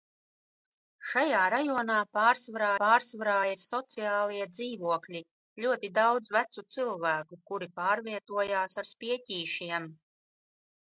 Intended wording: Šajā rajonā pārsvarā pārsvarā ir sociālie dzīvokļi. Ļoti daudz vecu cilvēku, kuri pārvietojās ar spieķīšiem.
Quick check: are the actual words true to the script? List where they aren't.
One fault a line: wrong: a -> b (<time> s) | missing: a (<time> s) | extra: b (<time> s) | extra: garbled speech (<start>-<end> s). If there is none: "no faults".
no faults